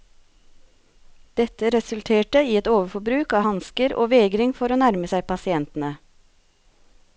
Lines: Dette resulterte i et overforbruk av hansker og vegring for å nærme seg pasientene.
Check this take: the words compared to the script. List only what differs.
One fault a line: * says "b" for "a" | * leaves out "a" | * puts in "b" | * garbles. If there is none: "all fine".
all fine